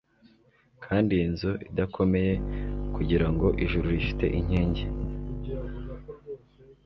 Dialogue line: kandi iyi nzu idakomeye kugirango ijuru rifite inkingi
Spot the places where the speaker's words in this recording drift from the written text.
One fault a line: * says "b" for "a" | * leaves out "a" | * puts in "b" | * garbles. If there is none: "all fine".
all fine